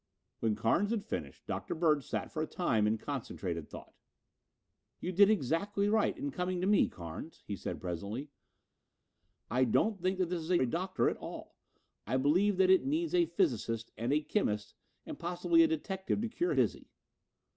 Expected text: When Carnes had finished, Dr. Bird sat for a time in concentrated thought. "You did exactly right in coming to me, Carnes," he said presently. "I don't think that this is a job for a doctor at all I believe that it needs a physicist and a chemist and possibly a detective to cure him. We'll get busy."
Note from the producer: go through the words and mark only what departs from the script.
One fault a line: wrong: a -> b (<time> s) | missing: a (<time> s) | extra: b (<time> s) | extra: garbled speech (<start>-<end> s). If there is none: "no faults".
missing: job for (10.6 s)
missing: him We'll get (16.5 s)